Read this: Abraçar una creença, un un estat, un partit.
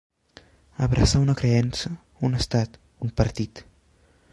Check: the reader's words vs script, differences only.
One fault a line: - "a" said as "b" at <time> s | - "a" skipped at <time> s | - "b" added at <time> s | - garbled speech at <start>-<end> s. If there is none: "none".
- "un" skipped at 2.4 s